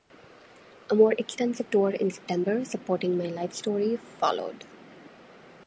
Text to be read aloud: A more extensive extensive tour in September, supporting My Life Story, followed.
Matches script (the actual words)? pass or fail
fail